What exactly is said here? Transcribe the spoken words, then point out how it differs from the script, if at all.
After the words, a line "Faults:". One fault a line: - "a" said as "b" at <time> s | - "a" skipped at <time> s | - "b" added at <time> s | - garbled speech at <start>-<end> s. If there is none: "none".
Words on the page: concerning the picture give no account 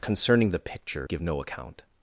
concerning the picture give no account
Faults:
none